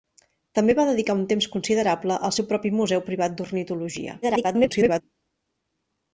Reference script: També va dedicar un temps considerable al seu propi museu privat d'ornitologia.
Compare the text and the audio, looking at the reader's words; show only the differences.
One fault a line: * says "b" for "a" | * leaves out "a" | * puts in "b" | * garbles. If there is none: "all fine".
* garbles